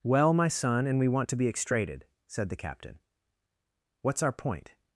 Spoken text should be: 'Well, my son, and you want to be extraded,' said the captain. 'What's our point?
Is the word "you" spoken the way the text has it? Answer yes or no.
no